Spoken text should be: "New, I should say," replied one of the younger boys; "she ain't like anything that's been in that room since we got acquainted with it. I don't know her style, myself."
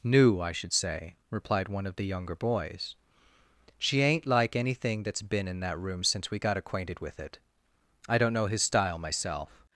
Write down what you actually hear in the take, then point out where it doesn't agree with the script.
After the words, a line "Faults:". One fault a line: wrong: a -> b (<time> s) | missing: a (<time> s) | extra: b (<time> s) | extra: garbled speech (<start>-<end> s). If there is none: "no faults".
"New, I should say," replied one of the younger boys; "she ain't like anything that's been in that room since we got acquainted with it. I don't know his style, myself."
Faults:
wrong: her -> his (8.5 s)